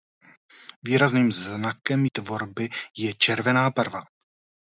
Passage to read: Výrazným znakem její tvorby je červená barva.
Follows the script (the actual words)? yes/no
no